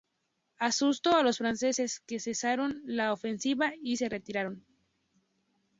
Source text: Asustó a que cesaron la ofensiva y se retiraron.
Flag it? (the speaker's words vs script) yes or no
yes